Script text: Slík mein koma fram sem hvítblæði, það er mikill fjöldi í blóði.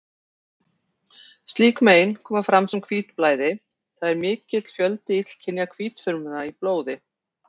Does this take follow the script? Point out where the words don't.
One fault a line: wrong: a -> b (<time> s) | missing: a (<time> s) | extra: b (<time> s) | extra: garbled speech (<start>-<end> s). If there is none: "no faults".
extra: illkynja hvítfrumna (5.2 s)